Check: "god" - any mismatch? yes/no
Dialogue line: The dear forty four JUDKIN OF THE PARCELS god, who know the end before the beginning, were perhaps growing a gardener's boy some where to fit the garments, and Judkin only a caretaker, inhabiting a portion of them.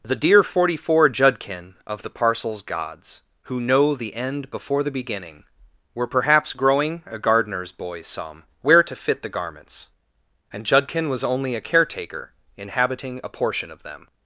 yes